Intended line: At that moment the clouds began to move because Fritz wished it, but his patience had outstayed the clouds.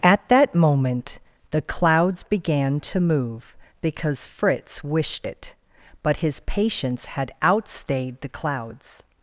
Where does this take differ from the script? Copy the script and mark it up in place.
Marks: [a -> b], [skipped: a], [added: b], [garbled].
At that moment the clouds began to move because Fritz wished it, but his patience had outstayed the clouds.